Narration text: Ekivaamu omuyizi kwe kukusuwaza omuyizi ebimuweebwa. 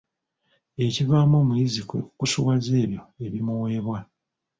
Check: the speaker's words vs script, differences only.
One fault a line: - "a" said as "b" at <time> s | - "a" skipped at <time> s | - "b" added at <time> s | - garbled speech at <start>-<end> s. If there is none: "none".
- "omuyizi" said as "ebyo" at 2.8 s